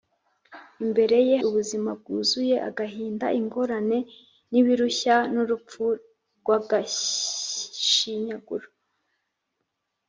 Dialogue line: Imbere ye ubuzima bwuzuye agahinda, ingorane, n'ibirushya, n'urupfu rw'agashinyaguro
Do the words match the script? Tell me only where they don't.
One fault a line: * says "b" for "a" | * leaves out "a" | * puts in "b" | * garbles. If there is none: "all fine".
all fine